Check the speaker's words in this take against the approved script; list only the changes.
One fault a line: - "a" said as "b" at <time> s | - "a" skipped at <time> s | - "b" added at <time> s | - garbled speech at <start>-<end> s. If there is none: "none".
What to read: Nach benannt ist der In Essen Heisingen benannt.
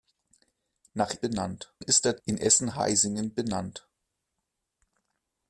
none